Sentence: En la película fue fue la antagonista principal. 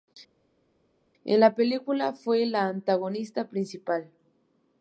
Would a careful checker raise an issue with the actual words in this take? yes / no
yes